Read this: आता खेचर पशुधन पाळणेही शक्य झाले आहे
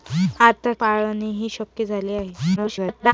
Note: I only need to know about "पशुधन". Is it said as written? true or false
false